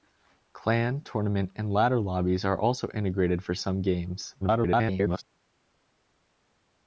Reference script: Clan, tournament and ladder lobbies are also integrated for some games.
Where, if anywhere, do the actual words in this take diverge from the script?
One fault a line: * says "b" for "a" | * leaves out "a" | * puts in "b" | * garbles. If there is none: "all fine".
* garbles